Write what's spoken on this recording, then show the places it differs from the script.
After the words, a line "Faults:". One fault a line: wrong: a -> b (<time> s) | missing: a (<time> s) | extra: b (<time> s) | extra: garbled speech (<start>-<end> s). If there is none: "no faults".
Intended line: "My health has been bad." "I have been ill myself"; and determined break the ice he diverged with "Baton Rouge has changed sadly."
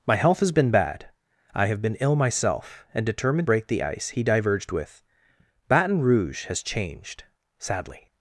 "My health has been bad." "I have been ill myself"; and determined break the ice he diverged with "Baton Rouge has changed sadly."
Faults:
no faults